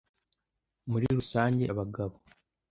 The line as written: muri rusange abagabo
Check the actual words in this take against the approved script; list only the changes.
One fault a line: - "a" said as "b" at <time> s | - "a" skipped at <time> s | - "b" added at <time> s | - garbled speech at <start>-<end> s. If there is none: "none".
none